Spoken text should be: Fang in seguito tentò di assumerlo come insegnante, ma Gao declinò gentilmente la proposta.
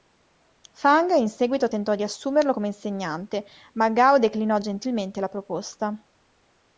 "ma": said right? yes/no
yes